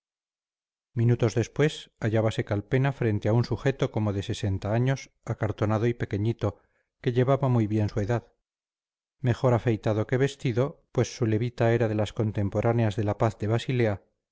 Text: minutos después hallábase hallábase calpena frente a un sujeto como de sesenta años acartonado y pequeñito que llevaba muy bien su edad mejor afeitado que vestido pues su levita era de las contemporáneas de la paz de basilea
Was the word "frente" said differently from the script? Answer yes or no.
no